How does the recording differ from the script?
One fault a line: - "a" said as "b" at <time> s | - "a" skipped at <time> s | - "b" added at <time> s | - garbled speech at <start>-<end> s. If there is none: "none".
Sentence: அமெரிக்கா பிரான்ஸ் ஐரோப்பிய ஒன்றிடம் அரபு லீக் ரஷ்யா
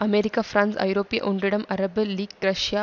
none